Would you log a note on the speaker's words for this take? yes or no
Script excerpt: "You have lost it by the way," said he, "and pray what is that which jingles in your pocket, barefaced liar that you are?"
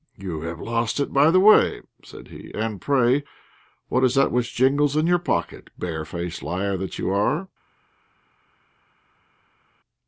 no